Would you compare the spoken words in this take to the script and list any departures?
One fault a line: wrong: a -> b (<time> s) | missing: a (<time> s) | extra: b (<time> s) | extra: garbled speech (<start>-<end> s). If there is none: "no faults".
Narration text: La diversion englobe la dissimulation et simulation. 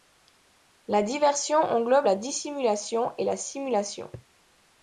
extra: la (3.2 s)